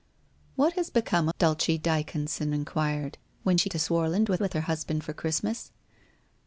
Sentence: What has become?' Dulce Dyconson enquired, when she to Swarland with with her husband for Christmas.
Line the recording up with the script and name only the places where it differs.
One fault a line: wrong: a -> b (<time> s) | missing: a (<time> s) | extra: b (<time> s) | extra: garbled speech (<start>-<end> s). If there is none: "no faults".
no faults